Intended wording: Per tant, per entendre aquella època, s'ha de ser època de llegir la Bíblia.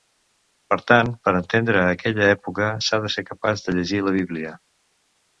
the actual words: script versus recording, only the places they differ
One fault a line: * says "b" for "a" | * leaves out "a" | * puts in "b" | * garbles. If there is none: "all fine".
* says "capaç" for "època"